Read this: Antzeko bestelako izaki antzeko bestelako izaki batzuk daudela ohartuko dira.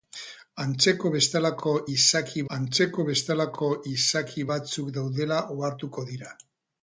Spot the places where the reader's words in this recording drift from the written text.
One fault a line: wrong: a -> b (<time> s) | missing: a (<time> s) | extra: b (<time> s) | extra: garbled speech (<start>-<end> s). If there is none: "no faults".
no faults